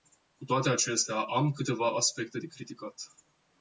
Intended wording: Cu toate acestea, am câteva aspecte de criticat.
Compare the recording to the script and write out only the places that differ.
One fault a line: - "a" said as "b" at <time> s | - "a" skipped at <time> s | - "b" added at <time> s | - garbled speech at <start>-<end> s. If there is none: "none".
none